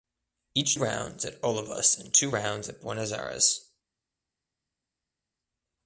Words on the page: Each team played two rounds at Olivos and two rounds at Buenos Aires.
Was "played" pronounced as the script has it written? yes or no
no